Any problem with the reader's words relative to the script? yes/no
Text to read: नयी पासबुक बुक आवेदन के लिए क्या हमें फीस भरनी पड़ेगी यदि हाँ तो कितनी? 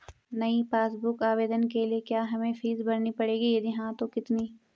no